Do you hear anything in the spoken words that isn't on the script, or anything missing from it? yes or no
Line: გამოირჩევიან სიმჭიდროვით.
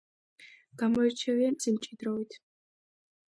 no